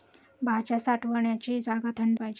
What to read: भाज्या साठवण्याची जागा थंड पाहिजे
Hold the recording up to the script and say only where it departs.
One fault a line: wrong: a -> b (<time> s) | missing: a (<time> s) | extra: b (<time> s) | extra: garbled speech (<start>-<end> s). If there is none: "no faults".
no faults